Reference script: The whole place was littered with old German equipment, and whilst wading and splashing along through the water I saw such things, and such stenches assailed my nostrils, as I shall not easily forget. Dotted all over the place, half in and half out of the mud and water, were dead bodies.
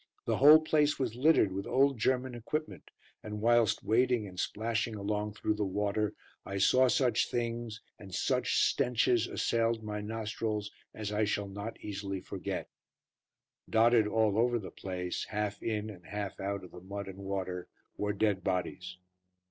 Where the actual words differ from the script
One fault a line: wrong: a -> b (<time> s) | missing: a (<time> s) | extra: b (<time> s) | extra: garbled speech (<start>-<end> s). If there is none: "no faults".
no faults